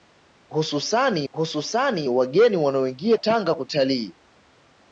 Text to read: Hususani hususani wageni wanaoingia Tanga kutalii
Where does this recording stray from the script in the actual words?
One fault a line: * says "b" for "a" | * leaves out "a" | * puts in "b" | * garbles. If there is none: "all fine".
all fine